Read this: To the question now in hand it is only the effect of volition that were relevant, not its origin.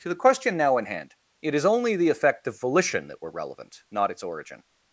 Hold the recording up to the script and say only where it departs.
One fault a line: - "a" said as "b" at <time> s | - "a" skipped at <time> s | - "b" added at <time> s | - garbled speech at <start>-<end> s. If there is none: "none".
none